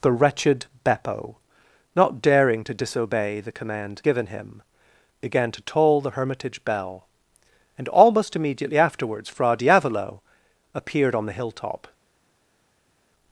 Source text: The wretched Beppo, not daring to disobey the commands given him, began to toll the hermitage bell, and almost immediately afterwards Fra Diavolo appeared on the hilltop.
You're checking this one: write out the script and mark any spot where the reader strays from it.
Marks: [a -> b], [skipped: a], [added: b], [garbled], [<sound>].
The wretched Beppo, not daring to disobey the [commands -> command] given him, began to toll the hermitage bell, and almost immediately afterwards Fra Diavolo appeared on the hilltop.